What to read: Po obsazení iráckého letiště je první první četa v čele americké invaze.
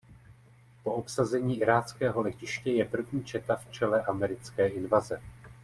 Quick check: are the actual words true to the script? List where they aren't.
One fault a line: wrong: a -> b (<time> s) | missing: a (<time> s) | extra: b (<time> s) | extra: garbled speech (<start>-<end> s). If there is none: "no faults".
missing: první (3.2 s)